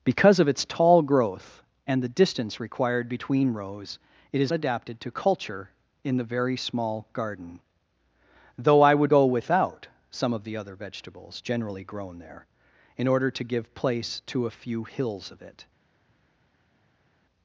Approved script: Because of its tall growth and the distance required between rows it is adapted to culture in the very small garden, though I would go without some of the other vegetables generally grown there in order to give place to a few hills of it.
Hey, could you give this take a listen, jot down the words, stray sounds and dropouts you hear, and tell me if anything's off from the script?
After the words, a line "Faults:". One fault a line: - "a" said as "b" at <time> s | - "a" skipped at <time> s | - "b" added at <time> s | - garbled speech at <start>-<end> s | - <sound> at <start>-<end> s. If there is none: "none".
Because of its tall growth and the distance required between rows it is adapted to culture in the very small garden, though I would go without some of the other vegetables generally grown there in order to give place to a few hills of it.
Faults:
none